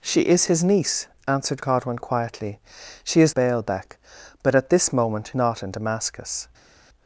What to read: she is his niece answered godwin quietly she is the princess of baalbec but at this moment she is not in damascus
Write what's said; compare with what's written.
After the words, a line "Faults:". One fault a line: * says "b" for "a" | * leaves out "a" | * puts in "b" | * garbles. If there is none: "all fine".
she is his niece answered godwin quietly she is baalbec but at this moment not in damascus
Faults:
* leaves out "the princess of"
* leaves out "she is"